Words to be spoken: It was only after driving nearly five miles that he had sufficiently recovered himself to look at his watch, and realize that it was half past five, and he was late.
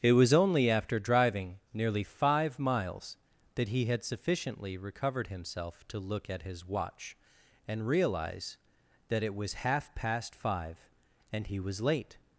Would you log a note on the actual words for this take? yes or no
no